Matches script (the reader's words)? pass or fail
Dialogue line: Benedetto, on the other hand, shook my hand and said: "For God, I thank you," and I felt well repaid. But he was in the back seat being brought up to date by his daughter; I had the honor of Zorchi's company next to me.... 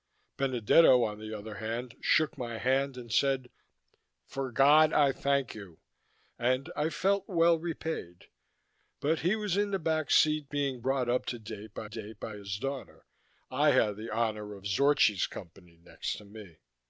fail